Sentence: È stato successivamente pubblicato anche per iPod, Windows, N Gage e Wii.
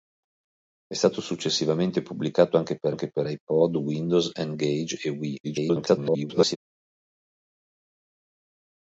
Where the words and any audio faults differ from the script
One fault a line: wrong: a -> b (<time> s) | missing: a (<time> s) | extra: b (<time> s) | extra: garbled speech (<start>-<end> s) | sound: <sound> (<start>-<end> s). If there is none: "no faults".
extra: anche per (2.9 s)
extra: garbled speech (5.4-6.6 s)